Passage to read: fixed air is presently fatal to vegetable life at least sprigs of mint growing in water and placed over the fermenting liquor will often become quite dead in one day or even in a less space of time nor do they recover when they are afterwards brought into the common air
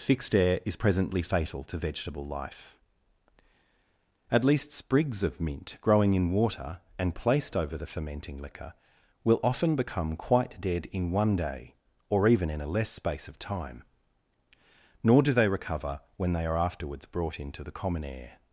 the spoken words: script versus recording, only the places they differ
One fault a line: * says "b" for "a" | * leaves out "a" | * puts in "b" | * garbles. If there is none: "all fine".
all fine